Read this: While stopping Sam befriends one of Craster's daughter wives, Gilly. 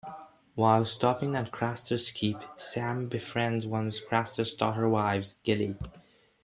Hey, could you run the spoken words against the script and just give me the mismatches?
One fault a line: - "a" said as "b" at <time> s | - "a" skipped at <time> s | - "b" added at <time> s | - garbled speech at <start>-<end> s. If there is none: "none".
- "at Craster's Keep" added at 1.4 s